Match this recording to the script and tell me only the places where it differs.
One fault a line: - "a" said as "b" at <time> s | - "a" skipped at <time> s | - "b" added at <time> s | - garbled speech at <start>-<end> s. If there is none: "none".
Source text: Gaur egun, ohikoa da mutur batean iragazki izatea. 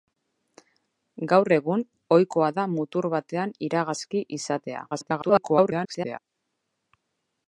- garbled speech at 4.9-6.2 s